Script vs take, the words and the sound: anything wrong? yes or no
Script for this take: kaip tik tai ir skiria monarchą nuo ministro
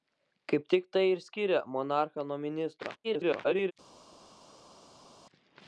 yes